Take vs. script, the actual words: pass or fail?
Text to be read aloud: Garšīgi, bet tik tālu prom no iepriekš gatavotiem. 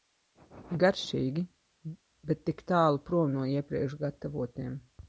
pass